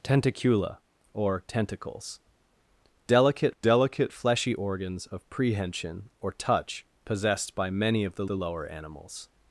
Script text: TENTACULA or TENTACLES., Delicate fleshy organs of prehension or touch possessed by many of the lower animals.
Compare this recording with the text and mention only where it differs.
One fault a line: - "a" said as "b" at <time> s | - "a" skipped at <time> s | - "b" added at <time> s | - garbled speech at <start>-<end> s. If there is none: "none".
- "Delicate" added at 3.6 s
- "the" added at 8.3 s